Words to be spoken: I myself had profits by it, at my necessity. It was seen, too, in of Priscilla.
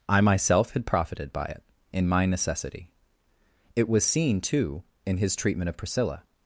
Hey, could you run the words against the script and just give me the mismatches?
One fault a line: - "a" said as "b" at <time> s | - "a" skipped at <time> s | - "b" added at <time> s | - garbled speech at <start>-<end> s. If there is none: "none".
- "profits" said as "profited" at 0.8 s
- "at" said as "in" at 1.9 s
- "his treatment" added at 5.2 s